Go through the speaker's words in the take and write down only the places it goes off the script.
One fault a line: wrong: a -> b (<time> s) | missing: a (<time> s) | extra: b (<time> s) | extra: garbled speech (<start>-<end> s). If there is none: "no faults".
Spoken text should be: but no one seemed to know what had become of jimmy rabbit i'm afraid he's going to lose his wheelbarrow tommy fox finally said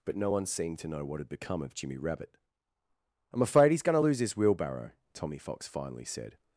no faults